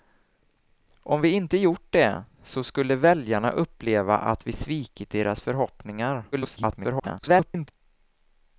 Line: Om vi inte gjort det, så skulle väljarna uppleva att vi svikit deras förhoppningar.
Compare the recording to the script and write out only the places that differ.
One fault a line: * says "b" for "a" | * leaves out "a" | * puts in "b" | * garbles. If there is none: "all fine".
* garbles